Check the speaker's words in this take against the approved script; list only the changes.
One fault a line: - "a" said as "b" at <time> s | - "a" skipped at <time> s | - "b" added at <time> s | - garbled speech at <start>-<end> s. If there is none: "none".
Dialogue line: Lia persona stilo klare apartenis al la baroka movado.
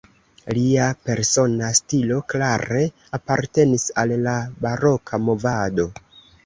none